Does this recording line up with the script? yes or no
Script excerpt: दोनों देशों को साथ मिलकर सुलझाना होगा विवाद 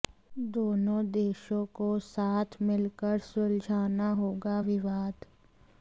yes